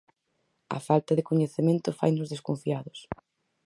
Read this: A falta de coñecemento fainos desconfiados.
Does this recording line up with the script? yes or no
yes